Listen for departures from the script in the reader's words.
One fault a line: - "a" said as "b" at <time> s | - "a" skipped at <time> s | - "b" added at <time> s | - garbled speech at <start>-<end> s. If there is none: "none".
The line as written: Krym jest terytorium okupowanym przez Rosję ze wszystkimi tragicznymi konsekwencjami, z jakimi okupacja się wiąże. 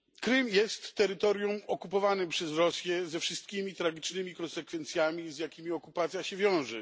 none